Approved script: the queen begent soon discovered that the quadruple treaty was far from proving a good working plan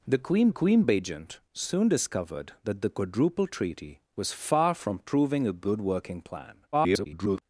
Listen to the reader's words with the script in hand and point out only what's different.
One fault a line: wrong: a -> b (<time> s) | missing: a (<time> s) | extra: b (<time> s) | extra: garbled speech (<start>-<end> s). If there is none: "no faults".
extra: queen (0.5 s)
extra: garbled speech (6.7-7.4 s)